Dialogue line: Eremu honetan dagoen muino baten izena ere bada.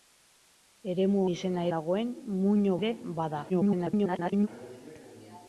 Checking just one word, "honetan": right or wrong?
wrong